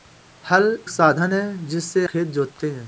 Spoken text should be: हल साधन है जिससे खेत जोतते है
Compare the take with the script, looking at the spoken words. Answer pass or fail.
pass